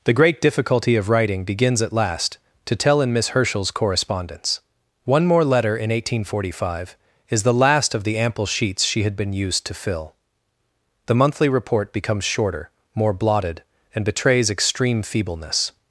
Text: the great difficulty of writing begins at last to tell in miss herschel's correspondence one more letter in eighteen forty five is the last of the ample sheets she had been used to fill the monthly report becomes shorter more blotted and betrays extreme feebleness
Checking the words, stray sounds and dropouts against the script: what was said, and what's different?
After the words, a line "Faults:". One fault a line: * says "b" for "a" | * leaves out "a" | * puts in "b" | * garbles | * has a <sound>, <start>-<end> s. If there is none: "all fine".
the great difficulty of writing begins at last to tell in miss herschel's correspondence one more letter in eighteen forty five is the last of the ample sheets she had been used to fill the monthly report becomes shorter more blotted and betrays extreme feebleness
Faults:
all fine